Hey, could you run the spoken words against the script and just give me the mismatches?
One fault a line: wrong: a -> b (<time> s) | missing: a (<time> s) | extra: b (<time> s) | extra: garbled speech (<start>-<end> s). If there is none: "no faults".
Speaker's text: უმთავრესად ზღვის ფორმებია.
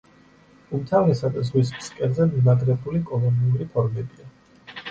extra: ფსკერზე მიმაგრებული კოლონიური (1.8 s)